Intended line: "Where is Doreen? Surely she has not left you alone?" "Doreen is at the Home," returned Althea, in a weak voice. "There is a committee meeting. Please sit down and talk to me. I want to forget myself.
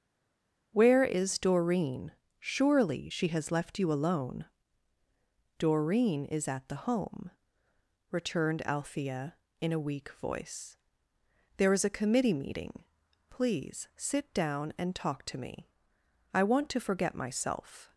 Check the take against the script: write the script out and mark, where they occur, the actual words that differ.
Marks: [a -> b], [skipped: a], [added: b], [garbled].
"Where is Doreen? Surely she has [skipped: not] left you alone?" "Doreen is at the Home," returned Althea, in a weak voice. "There is a committee meeting. Please sit down and talk to me. I want to forget myself.